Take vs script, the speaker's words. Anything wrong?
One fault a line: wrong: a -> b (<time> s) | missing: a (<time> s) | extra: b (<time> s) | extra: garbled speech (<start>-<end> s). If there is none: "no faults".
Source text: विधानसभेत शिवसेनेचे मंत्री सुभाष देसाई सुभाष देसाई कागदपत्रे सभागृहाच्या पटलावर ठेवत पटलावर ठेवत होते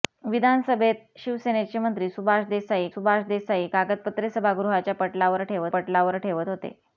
no faults